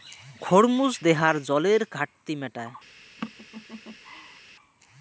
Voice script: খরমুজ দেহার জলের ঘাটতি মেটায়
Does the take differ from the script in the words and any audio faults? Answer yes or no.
yes